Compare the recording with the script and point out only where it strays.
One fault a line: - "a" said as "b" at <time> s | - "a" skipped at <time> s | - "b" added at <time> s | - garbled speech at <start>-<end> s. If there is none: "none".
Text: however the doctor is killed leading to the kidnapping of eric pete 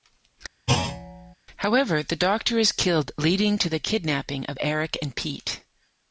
- "and" added at 5.0 s